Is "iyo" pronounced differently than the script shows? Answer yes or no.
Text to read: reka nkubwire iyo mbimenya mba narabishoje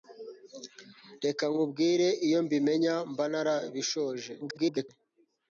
no